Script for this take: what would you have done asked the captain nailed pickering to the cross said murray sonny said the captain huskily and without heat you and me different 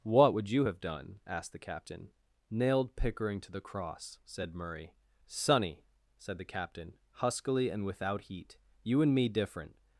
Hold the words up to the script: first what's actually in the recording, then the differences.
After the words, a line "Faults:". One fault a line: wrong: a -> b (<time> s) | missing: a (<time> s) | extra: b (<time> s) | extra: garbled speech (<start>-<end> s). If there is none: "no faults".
what would you have done asked the captain nailed pickering to the cross said murray sonny said the captain huskily and without heat you and me different
Faults:
no faults